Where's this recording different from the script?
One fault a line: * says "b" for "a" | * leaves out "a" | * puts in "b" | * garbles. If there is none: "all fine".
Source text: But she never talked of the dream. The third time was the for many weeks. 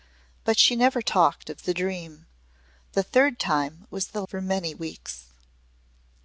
all fine